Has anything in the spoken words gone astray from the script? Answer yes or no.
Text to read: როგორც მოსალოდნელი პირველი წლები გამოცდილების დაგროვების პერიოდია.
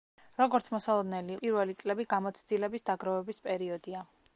no